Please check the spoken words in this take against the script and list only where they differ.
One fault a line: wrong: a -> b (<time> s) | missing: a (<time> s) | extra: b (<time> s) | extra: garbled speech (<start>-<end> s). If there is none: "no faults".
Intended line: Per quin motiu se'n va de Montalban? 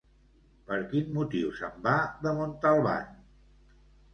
no faults